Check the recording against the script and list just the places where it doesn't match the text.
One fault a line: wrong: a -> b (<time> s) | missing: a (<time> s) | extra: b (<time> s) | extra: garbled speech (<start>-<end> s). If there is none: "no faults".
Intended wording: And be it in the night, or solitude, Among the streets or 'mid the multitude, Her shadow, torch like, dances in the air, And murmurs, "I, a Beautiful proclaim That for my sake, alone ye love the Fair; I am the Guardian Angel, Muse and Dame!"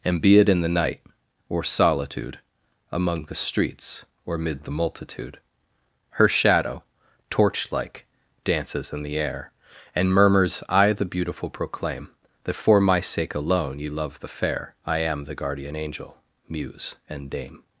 wrong: a -> the (10.9 s)